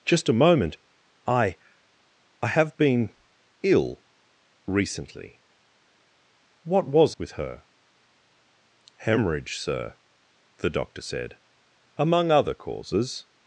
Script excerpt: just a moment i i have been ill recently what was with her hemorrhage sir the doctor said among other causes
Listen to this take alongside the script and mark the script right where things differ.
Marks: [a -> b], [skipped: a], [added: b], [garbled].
just a moment i i have been ill recently what was with her hemorrhage sir the doctor said among other causes